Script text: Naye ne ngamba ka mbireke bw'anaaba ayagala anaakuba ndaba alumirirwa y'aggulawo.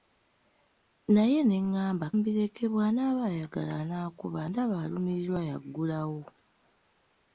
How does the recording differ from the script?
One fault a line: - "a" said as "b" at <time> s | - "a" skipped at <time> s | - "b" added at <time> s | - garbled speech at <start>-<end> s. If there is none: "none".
- "ka" skipped at 2.1 s